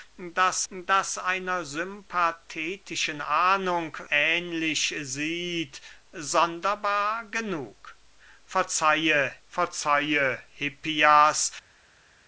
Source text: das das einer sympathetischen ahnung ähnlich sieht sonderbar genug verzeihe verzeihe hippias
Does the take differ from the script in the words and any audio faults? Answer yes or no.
no